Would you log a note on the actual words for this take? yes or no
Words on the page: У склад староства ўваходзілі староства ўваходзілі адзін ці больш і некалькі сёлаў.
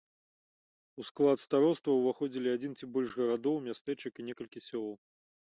yes